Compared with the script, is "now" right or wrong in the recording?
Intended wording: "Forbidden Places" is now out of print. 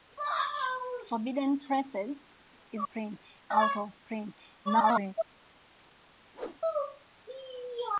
wrong